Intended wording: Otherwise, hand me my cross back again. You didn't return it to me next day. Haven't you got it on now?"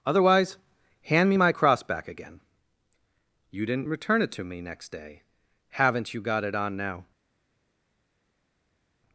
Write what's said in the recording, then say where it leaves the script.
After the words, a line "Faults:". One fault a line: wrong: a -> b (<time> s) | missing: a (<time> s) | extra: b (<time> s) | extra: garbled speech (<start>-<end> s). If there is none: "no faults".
Otherwise, hand me my cross back again. You didn't return it to me next day. Haven't you got it on now?"
Faults:
no faults